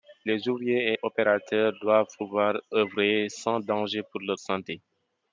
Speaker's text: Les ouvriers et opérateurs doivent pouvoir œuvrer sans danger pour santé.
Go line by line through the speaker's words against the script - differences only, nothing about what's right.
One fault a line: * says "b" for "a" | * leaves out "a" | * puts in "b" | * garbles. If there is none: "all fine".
* puts in "leur"